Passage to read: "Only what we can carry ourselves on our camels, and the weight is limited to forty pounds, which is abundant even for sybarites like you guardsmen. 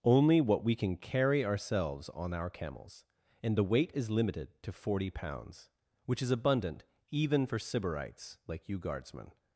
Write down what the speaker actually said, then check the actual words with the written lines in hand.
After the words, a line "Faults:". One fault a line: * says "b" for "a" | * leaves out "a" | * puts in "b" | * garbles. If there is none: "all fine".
"Only what we can carry ourselves on our camels, and the weight is limited to forty pounds, which is abundant even for sybarites like you guardsmen.
Faults:
all fine